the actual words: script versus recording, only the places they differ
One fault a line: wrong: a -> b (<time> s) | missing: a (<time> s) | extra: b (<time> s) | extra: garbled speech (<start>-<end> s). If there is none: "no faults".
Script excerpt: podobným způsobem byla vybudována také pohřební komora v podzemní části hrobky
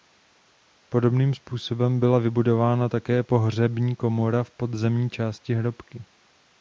no faults